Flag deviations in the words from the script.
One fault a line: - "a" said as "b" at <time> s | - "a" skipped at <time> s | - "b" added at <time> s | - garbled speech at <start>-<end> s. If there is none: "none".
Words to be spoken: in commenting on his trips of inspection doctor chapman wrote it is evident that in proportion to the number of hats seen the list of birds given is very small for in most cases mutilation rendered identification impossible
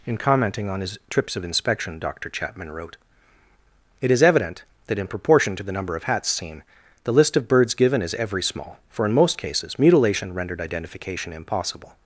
- "very" said as "every" at 8.2 s